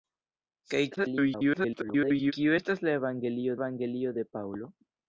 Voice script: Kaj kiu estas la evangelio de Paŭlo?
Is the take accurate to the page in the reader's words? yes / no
no